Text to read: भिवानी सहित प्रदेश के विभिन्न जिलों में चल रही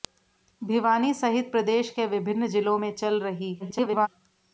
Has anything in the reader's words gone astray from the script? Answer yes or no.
yes